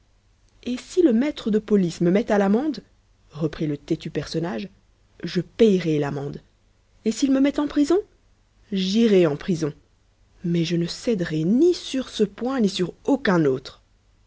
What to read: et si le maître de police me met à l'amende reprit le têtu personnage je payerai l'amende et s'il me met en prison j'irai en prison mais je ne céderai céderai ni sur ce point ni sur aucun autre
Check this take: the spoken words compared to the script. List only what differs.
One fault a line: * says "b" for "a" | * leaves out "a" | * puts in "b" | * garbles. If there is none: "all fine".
* leaves out "céderai"